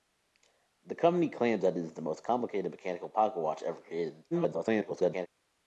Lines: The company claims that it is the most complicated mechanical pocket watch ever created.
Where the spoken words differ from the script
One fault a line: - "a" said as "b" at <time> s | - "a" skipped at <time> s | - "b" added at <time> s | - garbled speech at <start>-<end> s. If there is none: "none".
- garbled speech at 4.3-5.3 s